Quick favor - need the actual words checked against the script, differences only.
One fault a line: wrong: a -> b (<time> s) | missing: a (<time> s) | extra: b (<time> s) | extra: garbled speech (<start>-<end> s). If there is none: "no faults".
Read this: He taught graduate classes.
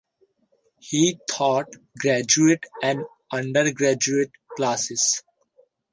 extra: and undergraduate (2.8 s)